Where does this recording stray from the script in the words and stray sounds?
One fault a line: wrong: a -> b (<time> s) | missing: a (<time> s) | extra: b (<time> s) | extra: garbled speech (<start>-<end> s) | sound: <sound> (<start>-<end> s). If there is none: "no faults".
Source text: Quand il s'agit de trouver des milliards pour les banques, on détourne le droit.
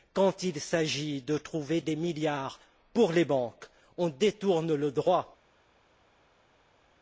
no faults